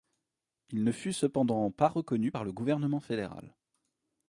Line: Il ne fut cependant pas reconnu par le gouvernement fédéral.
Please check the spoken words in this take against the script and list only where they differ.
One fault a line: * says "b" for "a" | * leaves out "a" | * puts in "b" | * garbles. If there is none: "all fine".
all fine